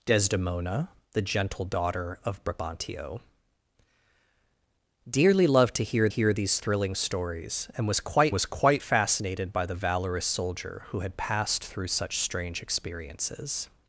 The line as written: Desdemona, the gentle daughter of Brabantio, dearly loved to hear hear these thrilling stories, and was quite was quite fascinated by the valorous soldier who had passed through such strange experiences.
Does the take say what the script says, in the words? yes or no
yes